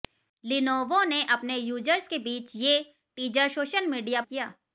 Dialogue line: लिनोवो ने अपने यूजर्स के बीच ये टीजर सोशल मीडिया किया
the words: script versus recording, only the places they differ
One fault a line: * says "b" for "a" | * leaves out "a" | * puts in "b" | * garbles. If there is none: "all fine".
all fine